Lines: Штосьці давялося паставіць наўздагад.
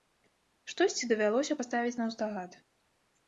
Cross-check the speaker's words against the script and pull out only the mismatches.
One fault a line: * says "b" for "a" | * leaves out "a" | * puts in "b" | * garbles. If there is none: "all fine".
all fine